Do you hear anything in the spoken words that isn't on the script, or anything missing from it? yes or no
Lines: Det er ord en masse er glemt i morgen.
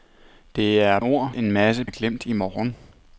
no